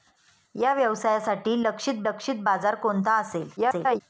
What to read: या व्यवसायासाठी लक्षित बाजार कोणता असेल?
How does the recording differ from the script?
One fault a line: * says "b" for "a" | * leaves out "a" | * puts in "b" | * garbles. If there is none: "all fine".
* puts in "लक्षित"
* garbles